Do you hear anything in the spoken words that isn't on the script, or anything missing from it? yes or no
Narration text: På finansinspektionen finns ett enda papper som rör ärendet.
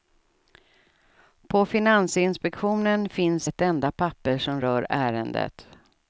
no